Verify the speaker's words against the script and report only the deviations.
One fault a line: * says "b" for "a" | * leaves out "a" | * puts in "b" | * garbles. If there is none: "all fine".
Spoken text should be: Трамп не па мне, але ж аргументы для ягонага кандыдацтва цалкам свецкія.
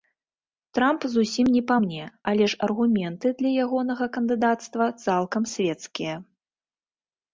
* puts in "зусім"